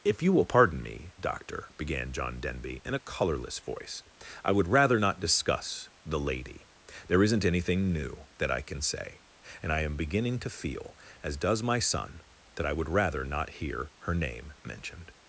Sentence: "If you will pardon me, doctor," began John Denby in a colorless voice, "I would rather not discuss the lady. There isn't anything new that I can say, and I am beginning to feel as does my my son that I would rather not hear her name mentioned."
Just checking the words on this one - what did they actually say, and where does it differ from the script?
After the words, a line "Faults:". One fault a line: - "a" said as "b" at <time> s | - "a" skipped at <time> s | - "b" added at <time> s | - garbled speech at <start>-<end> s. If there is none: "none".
"If you will pardon me, doctor," began John Denby in a colorless voice, "I would rather not discuss the lady. There isn't anything new that I can say, and I am beginning to feel as does my son that I would rather not hear her name mentioned."
Faults:
- "my" skipped at 11.8 s